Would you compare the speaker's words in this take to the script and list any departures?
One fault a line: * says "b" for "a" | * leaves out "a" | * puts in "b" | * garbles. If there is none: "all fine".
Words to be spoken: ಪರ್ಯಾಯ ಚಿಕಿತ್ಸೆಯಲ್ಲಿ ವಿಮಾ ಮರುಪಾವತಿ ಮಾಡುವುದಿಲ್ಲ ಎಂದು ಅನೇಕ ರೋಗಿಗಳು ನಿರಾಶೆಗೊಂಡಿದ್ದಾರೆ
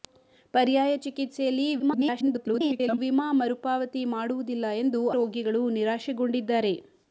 * garbles
* leaves out "ಅನೇಕ"